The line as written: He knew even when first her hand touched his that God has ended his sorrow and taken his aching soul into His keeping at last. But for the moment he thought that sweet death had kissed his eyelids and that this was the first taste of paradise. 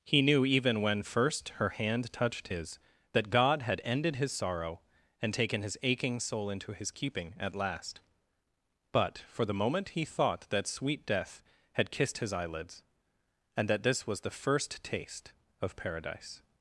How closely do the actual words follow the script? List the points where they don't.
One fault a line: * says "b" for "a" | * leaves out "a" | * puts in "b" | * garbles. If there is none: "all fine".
* says "had" for "has"